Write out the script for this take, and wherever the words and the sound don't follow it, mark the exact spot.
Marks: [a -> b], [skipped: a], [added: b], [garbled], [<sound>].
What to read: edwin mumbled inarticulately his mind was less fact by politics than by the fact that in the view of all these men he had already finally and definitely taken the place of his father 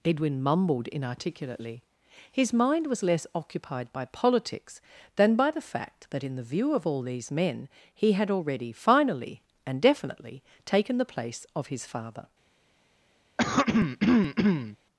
edwin mumbled inarticulately his mind was less [fact -> occupied] by politics than by the fact that in the view of all these men he had already finally and definitely taken the place of his father [throat clearing]